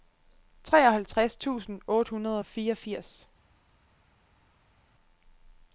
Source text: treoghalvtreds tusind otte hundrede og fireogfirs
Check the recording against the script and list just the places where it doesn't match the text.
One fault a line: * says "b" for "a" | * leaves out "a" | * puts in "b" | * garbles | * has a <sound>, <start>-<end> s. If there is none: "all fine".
all fine